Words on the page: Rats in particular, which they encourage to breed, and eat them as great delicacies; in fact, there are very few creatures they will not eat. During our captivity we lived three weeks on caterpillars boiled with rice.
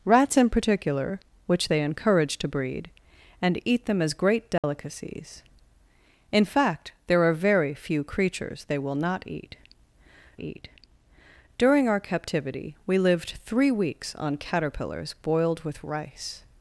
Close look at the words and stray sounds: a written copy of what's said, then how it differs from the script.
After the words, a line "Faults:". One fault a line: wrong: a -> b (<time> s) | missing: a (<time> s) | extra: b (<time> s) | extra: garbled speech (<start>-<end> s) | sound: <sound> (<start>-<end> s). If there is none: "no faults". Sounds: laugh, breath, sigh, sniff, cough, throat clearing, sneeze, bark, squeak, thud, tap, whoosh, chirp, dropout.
Rats in particular, which they encourage to breed, and eat them as great delicacies; in fact, there are very few creatures they will not eat eat. During our captivity we lived three weeks on caterpillars boiled with rice.
Faults:
sound: dropout (4.6-4.6 s)
extra: eat (10.4 s)